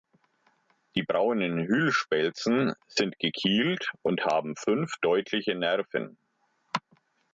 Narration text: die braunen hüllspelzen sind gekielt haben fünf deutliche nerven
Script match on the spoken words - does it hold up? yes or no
no